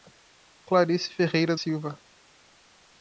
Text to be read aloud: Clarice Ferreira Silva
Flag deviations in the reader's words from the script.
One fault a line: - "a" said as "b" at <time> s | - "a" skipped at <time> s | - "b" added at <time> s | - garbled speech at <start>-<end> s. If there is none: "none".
none